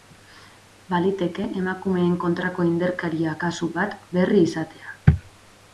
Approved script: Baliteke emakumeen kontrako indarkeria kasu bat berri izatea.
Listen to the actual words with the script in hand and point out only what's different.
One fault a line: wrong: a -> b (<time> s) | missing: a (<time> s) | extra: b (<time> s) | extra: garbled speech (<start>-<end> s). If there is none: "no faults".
no faults